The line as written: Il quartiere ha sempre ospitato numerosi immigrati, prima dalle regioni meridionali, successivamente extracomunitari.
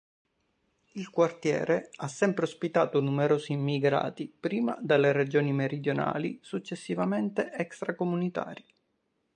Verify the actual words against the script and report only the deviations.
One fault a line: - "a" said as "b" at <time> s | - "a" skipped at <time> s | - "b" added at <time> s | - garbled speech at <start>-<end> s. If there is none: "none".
none